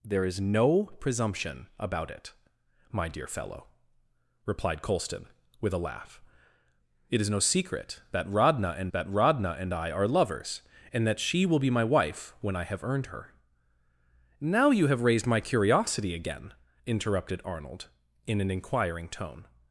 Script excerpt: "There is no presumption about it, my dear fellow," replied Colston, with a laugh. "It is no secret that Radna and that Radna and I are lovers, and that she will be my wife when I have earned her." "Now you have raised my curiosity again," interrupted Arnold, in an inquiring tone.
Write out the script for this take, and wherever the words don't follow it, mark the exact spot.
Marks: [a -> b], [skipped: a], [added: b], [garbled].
"There is no presumption about it, my dear fellow," replied Colston, with a laugh. "It is no secret that Radna and that Radna and I are lovers, and that she will be my wife when I have earned her." "Now you have raised my curiosity again," interrupted Arnold, in an inquiring tone.